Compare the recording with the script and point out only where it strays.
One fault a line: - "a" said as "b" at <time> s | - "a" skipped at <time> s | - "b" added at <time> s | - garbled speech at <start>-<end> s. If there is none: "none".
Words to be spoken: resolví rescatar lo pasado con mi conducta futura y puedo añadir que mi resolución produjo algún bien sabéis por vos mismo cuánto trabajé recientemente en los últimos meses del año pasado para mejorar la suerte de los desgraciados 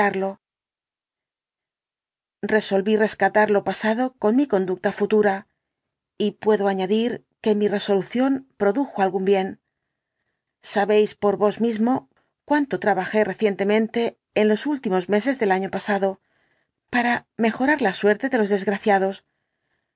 none